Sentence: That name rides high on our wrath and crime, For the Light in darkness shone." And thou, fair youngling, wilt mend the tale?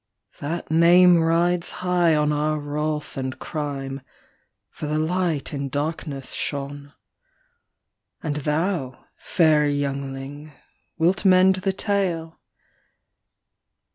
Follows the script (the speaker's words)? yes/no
yes